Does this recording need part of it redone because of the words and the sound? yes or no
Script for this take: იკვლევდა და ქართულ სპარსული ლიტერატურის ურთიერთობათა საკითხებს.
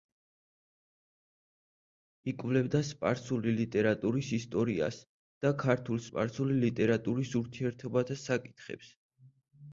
yes